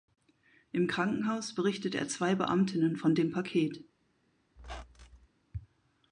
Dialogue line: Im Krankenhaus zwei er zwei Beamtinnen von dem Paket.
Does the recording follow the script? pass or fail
fail